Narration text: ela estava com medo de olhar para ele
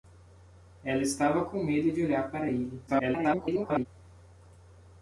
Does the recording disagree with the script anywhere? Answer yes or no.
yes